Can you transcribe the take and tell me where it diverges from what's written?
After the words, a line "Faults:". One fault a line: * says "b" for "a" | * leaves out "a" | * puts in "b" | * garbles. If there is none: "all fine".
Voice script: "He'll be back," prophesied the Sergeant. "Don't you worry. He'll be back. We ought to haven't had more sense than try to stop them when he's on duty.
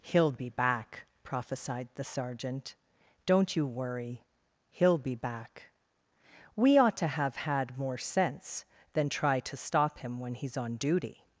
"He'll be back," prophesied the Sergeant. "Don't you worry. He'll be back. We ought to have had more sense than try to stop him when he's on duty.
Faults:
* says "have" for "haven't"
* says "him" for "them"